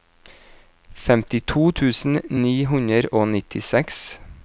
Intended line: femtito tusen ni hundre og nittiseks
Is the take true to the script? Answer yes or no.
yes